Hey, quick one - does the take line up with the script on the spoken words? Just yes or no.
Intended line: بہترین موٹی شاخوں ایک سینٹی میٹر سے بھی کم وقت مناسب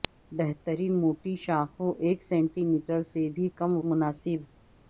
no